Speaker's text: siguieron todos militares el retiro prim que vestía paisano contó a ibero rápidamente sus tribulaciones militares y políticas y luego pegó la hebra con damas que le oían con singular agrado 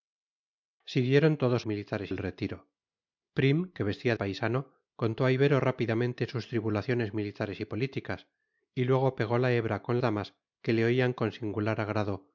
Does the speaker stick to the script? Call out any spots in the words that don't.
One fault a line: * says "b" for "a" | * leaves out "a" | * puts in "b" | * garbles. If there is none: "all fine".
all fine